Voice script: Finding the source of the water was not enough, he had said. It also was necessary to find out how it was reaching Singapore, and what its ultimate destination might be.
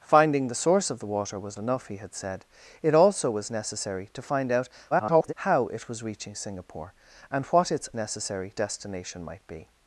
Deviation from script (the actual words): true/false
true